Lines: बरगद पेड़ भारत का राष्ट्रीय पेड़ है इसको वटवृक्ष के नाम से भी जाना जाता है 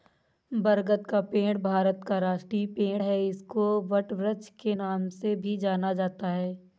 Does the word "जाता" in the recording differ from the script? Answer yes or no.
no